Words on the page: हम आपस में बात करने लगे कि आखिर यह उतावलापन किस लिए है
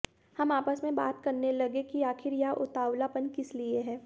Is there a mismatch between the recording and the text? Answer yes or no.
no